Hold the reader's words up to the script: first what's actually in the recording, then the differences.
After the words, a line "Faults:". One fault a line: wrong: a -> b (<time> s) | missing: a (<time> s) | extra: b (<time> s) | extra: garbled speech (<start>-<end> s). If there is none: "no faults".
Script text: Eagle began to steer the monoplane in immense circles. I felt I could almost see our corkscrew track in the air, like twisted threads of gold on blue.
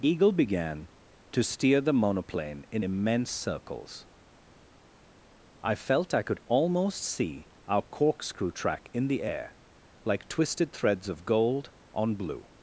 Eagle began to steer the monoplane in immense circles. I felt I could almost see our corkscrew track in the air, like twisted threads of gold on blue.
Faults:
no faults